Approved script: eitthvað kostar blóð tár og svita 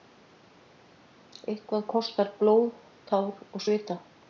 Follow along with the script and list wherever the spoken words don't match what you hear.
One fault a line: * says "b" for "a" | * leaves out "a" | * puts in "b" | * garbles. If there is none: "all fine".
all fine